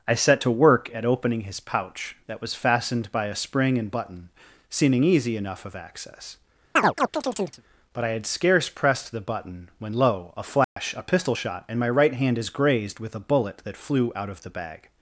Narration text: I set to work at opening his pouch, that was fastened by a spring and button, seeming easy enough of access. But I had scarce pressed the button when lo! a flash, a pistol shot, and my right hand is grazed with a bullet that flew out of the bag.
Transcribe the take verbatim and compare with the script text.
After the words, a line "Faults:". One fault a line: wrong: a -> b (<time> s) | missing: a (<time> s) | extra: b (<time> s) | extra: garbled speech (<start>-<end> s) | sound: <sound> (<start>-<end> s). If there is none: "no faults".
I set to work at opening his pouch, that was fastened by a spring and button, seeming easy enough of access. But I had scarce pressed the button when lo! a flash, a pistol shot, and my right hand is grazed with a bullet that flew out of the bag.
Faults:
sound: chirp (6.8-7.6 s)
sound: dropout (10.6-10.8 s)